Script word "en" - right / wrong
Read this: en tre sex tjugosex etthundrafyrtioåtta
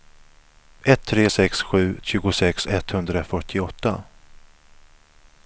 wrong